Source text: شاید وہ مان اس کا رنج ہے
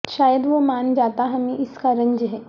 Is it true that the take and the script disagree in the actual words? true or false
true